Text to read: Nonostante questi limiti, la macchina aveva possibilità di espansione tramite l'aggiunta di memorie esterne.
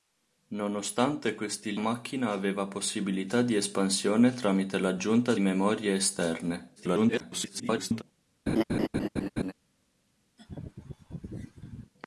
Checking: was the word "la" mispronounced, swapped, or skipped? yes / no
yes